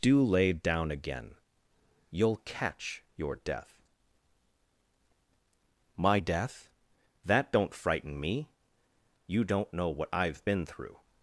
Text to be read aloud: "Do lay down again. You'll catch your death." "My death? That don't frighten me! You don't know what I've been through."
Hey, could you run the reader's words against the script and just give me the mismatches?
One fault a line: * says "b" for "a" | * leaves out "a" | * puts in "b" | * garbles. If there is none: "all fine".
all fine